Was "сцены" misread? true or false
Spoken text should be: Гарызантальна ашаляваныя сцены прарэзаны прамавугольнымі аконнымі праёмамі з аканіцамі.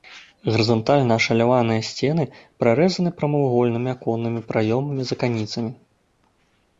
false